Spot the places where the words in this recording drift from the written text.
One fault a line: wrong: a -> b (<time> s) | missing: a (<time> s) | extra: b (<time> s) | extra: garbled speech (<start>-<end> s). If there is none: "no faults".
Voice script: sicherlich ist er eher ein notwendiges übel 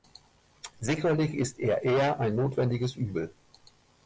no faults